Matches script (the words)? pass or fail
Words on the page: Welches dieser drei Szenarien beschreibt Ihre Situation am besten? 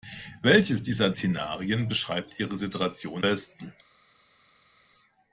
fail